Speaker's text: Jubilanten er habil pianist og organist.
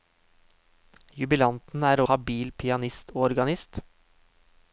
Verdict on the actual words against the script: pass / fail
pass